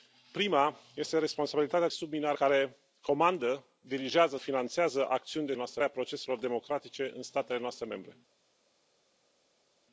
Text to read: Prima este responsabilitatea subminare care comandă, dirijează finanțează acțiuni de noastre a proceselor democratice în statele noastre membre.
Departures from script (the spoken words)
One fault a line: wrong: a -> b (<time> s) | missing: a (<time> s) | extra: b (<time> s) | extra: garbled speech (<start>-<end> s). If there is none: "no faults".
no faults